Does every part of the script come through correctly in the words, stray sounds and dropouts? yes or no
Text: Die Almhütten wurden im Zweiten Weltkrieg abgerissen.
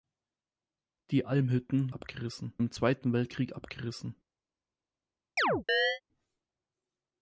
no